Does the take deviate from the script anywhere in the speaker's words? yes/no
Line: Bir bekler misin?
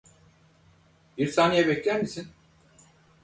yes